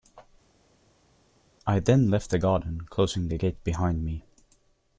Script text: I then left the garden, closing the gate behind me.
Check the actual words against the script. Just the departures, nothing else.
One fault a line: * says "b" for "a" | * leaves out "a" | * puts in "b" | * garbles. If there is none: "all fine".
all fine